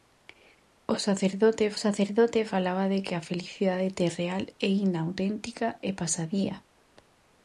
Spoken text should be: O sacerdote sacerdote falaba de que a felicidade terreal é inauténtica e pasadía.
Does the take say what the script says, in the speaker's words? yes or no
yes